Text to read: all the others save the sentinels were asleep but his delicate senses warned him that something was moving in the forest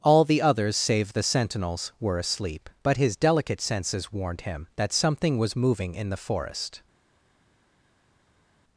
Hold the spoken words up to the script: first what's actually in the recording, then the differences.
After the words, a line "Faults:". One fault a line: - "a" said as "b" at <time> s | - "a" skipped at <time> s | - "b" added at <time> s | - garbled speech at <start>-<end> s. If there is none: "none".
all the others save the sentinels were asleep but his delicate senses warned him that something was moving in the forest
Faults:
none